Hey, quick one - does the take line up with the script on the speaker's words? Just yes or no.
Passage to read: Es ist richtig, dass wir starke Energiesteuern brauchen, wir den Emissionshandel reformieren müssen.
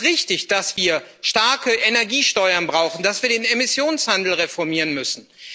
no